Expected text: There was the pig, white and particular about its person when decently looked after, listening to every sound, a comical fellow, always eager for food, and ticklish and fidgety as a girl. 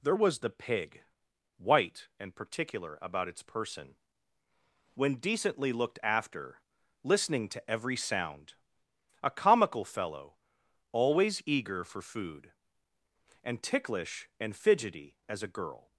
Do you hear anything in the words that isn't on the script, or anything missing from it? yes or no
no